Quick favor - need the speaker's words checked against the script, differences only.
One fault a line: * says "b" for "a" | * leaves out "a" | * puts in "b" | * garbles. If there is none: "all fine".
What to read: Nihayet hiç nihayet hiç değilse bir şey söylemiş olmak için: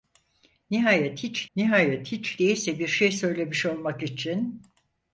all fine